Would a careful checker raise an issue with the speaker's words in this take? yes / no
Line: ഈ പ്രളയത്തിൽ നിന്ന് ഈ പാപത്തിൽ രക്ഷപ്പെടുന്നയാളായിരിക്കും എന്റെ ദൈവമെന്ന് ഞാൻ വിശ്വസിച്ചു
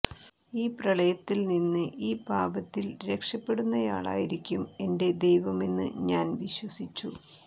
no